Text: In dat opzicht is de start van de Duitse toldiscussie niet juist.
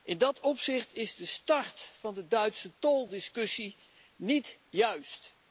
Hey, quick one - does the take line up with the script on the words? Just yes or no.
yes